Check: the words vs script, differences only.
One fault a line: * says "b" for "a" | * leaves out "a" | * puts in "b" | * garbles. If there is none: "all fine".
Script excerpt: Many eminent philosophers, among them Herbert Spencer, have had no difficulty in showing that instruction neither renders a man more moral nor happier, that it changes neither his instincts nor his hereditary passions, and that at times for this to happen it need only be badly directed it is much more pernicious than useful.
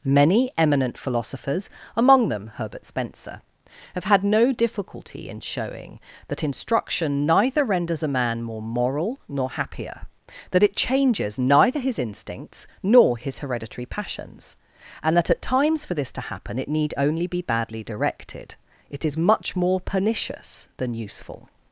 all fine